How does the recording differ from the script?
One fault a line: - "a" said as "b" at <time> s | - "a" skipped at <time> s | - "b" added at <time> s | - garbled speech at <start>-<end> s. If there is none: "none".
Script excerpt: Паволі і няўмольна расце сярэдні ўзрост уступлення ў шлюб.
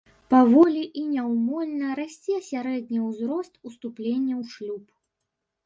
none